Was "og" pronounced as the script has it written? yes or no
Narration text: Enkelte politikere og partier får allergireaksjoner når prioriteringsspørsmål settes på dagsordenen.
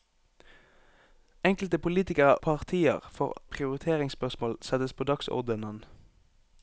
no